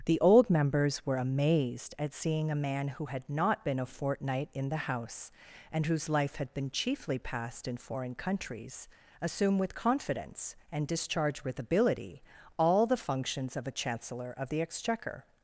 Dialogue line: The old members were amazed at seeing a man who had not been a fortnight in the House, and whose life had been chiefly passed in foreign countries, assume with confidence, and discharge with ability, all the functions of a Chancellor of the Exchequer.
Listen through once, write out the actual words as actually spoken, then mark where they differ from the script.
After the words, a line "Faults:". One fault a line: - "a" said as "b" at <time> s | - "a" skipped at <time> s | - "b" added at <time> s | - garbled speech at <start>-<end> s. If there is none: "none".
The old members were amazed at seeing a man who had not been a fortnight in the House, and whose life had been chiefly passed in foreign countries, assume with confidence, and discharge with ability, all the functions of a Chancellor of the Exchequer.
Faults:
none